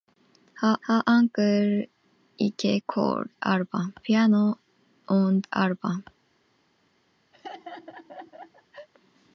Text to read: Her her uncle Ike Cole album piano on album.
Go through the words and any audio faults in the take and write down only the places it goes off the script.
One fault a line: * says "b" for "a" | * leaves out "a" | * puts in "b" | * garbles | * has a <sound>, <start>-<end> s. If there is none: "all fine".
* has a laugh, 7.3-8.9 s